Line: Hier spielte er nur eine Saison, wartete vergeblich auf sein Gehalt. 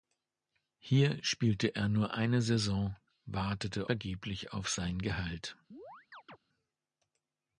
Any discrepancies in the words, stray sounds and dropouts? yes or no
yes